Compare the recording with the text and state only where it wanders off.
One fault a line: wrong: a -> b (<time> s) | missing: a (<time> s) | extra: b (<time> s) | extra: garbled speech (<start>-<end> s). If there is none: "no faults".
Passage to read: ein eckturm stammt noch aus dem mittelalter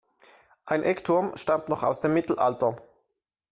no faults